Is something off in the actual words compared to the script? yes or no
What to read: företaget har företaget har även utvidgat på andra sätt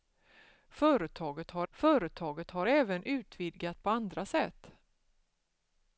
no